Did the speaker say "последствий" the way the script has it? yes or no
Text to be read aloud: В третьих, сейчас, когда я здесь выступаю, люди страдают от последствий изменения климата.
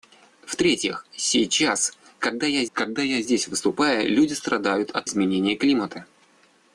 no